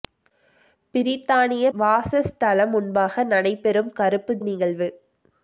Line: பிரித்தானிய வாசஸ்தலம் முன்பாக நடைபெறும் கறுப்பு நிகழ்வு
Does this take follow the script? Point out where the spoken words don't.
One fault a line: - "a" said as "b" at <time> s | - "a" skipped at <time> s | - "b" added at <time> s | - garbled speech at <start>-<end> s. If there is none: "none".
none